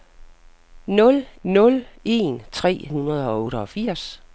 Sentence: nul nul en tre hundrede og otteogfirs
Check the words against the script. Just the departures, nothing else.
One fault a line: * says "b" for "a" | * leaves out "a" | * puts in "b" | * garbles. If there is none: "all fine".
all fine